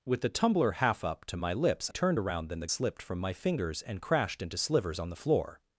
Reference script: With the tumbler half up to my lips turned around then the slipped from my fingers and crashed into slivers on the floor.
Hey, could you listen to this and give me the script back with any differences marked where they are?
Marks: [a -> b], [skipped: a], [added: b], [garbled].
With the tumbler half up to my lips turned around then the slipped from my fingers and crashed into slivers on the floor.